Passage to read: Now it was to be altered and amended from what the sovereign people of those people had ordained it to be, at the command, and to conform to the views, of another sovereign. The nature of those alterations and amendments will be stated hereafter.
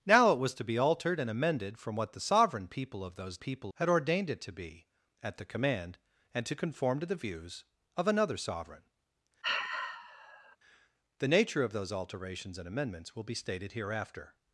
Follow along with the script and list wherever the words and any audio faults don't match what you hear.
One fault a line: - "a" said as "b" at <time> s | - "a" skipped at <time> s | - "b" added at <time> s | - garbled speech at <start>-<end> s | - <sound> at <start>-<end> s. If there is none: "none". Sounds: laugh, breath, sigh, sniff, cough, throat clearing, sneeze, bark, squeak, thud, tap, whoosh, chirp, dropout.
- sigh at 9.4-10.6 s